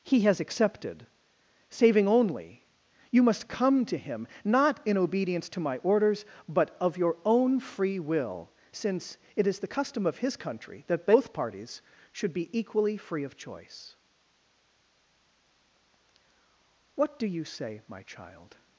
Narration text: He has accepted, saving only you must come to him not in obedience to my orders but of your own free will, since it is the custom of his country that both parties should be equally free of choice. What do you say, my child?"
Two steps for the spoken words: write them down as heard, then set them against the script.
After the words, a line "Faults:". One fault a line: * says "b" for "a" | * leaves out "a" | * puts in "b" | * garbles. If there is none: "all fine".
He has accepted, saving only you must come to him not in obedience to my orders but of your own free will, since it is the custom of his country that both parties should be equally free of choice. What do you say, my child?"
Faults:
all fine